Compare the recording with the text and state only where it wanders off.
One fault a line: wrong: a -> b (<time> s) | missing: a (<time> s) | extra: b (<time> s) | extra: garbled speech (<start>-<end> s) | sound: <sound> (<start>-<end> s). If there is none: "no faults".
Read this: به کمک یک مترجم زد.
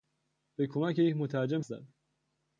no faults